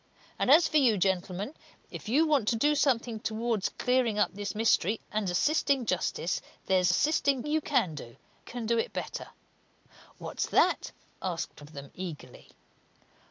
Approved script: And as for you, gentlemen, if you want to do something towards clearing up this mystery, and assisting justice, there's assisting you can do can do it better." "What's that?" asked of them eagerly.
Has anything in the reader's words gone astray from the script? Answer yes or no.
no